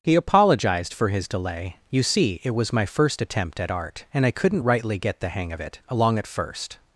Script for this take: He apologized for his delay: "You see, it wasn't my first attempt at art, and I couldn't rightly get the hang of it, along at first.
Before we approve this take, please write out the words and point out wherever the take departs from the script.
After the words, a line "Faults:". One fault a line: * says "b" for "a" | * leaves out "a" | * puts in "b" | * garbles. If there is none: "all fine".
He apologized for his delay: "You see, it was my first attempt at art, and I couldn't rightly get the hang of it, along at first.
Faults:
* says "was" for "wasn't"